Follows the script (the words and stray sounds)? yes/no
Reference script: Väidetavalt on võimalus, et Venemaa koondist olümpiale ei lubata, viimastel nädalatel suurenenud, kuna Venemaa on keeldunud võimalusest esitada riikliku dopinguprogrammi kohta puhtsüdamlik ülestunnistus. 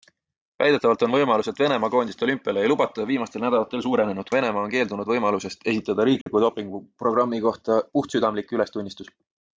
no